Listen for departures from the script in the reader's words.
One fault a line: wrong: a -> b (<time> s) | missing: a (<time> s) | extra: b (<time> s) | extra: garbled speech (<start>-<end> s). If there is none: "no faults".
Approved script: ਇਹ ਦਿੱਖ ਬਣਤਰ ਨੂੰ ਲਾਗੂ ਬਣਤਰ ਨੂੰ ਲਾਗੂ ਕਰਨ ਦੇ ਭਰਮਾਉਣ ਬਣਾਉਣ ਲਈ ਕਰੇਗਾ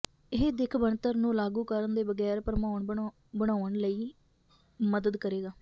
missing: ਬਣਤਰ ਨੂੰ ਲਾਗੂ (1.6 s)
extra: ਬਗੈਰ (2.0 s)
extra: ਮਦਦ (4.8 s)